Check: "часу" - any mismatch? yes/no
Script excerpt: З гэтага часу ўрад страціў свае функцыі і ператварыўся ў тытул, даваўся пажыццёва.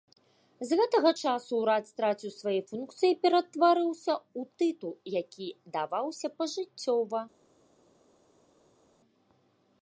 no